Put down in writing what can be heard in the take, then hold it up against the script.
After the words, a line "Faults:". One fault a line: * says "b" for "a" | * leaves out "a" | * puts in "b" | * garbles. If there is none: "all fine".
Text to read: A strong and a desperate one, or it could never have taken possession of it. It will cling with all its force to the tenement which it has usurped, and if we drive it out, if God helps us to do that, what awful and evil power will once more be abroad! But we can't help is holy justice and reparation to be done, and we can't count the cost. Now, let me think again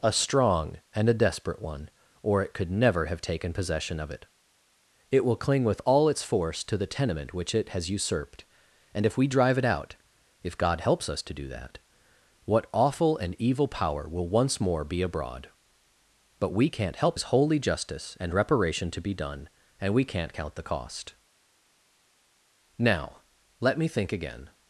A strong and a desperate one, or it could never have taken possession of it. It will cling with all its force to the tenement which it has usurped, and if we drive it out, if God helps us to do that, what awful and evil power will once more be abroad! But we can't help is holy justice and reparation to be done, and we can't count the cost. Now, let me think again
Faults:
all fine